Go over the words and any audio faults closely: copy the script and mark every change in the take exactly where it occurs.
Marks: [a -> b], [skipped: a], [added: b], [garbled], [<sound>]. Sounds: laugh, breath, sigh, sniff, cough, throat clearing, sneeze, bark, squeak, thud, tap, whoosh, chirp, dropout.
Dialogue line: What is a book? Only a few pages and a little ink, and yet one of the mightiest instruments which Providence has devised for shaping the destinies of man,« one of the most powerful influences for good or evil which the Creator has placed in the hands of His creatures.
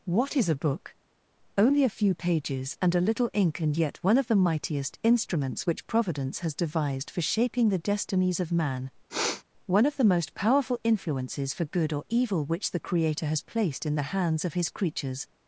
What is a book? Only a few pages and a little ink, and yet one of the mightiest instruments which Providence has devised for shaping the destinies of man,« [sniff] one of the most powerful influences for good or evil which the Creator has placed in the hands of His creatures.